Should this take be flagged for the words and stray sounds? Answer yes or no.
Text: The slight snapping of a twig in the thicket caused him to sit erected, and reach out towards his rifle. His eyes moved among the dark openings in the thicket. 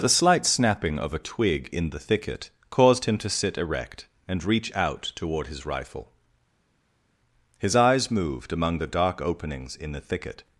yes